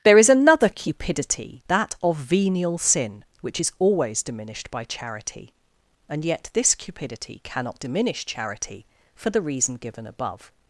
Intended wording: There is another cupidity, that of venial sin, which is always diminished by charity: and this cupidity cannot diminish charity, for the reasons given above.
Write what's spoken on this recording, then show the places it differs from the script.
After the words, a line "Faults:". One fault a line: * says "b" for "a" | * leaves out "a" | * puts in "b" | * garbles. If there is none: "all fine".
There is another cupidity, that of venial sin, which is always diminished by charity: and yet this cupidity cannot diminish charity, for the reason given above.
Faults:
* puts in "yet"
* says "reason" for "reasons"